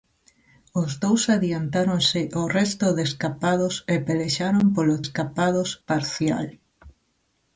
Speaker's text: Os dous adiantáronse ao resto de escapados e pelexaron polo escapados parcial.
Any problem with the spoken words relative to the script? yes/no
no